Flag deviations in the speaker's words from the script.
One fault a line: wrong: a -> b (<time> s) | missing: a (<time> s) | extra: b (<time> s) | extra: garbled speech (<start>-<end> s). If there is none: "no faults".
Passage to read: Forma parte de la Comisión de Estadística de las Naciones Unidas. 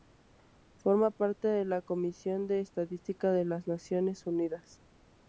no faults